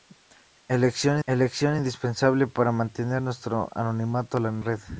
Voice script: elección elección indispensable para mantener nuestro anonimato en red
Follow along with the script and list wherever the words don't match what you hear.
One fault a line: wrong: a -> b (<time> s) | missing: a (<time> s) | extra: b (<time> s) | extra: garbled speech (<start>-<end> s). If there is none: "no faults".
no faults